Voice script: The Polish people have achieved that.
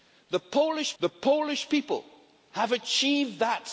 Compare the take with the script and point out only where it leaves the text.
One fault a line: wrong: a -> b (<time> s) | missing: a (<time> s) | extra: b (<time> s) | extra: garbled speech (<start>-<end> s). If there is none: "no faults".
extra: the Polish (1.0 s)